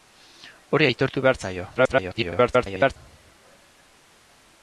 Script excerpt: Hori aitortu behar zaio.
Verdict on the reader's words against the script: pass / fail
fail